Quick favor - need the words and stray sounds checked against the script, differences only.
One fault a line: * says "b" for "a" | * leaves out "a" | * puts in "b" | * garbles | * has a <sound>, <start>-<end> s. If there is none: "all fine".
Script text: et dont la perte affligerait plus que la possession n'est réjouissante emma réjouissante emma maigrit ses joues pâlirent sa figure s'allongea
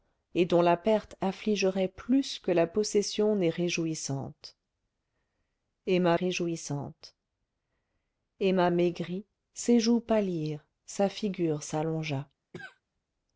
* has a cough, 12.5-12.8 s